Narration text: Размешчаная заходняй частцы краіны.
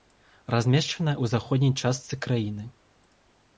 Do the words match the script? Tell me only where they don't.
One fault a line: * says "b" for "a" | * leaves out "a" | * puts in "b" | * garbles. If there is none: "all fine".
* puts in "ў"